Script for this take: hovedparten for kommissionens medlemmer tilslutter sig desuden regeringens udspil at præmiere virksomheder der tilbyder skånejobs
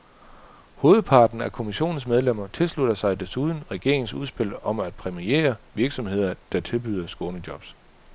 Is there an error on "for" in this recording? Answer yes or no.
yes